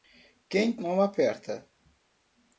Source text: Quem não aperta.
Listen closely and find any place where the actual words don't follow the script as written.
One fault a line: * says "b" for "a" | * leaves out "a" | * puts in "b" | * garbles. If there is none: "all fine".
all fine